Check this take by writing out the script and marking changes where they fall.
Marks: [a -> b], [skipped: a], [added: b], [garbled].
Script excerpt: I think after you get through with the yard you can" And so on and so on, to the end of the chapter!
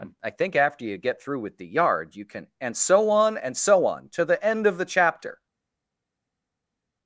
I think after you get through with the yard you can" And so on and so on, to the end of the chapter!